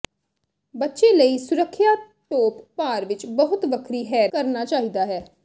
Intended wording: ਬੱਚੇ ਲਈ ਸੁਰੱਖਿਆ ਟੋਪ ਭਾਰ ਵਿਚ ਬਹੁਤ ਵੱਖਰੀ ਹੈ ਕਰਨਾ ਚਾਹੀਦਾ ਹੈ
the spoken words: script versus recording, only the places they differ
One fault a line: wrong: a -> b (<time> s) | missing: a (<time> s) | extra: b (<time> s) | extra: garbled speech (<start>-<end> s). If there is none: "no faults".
no faults